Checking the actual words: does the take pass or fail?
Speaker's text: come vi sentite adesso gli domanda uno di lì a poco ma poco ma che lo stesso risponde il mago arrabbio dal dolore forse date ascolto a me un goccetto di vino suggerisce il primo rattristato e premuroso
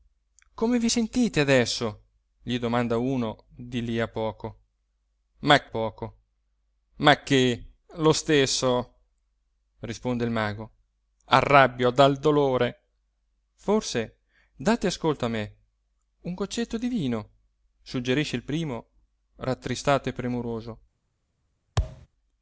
pass